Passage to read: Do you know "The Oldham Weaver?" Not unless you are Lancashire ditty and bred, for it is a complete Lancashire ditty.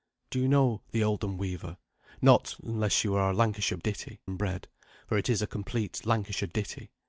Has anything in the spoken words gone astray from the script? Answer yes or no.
no